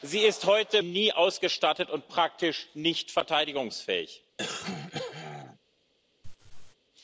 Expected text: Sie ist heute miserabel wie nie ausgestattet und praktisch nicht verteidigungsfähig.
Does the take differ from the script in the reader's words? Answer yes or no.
yes